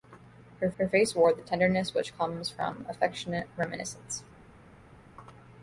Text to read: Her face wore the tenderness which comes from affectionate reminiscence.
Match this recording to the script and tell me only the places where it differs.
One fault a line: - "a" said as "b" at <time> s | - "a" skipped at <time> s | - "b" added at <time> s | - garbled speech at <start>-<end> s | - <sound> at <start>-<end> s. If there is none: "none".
- "her" added at 0.8 s